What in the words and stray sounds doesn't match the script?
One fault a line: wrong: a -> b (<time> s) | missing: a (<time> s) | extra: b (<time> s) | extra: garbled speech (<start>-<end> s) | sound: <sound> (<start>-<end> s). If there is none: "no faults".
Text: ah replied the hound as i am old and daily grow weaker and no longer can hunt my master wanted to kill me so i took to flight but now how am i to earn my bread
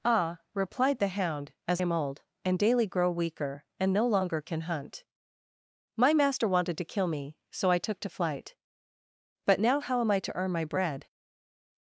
missing: i (1.8 s)